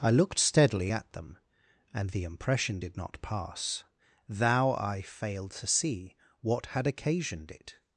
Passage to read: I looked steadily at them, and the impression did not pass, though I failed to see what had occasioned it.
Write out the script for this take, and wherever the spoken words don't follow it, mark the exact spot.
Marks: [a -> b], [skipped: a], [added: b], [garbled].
I looked steadily at them, and the impression did not pass, [though -> thou] I failed to see what had occasioned it.